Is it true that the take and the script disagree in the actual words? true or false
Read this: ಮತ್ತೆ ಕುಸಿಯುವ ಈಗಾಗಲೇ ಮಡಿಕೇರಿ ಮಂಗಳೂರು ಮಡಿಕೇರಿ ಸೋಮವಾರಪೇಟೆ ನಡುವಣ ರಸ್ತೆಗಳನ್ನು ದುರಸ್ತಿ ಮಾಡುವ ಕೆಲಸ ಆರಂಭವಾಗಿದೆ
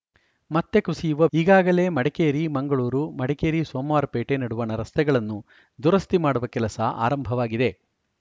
false